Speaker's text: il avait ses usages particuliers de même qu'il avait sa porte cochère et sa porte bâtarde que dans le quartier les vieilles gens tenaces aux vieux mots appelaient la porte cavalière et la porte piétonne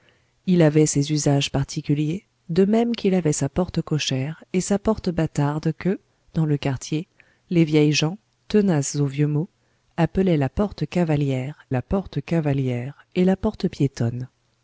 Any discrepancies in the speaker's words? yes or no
yes